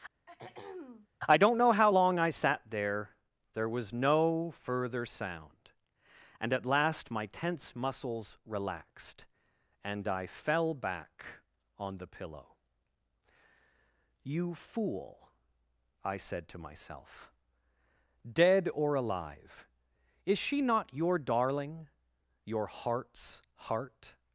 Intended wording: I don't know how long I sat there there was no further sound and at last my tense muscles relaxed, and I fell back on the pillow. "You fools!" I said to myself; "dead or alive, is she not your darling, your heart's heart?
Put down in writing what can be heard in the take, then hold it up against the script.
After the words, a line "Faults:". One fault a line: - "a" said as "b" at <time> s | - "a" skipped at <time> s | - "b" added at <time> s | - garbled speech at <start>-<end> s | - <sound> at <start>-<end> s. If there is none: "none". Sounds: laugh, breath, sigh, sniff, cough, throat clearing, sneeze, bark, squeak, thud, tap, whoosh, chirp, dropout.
I don't know how long I sat there there was no further sound and at last my tense muscles relaxed, and I fell back on the pillow. "You fool!" I said to myself; "dead or alive, is she not your darling, your heart's heart?
Faults:
- throat clearing at 0.3-1.1 s
- "fools" said as "fool" at 14.5 s